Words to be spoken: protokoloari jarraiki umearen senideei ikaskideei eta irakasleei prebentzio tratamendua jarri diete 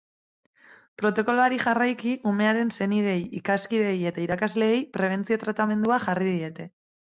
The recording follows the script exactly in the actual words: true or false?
true